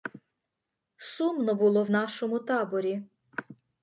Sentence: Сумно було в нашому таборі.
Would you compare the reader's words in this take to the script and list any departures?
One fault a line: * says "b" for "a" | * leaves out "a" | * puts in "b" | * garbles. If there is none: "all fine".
all fine